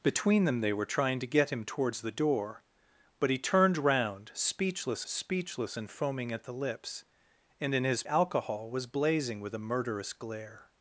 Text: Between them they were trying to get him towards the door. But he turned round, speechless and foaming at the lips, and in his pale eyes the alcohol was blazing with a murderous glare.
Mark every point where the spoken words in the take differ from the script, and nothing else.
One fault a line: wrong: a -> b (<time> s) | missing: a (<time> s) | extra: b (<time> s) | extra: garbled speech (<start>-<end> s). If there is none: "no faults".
extra: speechless (5.0 s)
missing: pale eyes the (8.0 s)